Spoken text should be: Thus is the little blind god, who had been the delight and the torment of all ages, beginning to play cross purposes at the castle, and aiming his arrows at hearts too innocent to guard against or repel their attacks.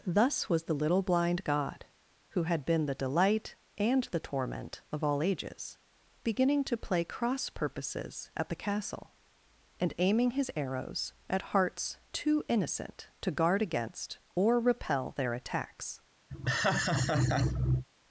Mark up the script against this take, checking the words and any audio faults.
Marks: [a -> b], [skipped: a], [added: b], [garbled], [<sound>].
Thus [is -> was] the little blind god, who had been the delight and the torment of all ages, beginning to play cross purposes at the castle, and aiming his arrows at hearts too innocent to guard against or repel their attacks. [laugh]